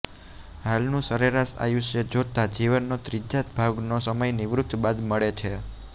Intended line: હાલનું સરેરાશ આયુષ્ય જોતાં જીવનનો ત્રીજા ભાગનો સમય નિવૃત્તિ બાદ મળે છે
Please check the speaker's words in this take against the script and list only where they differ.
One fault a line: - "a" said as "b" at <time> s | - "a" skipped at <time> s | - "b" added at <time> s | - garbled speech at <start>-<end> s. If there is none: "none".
none